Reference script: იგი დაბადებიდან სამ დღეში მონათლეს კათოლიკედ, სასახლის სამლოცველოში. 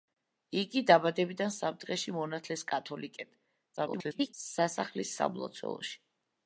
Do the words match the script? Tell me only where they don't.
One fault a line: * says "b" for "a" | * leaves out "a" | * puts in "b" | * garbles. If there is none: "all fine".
* garbles